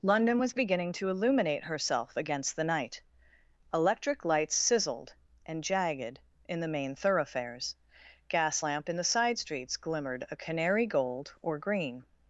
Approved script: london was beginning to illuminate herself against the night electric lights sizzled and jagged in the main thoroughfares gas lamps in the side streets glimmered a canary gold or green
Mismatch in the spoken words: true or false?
true